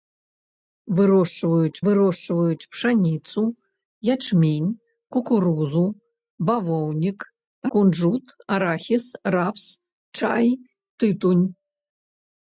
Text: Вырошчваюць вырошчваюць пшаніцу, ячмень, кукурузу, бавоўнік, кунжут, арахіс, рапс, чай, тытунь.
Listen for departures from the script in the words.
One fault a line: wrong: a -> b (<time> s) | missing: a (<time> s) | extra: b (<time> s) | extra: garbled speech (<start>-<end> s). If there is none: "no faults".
no faults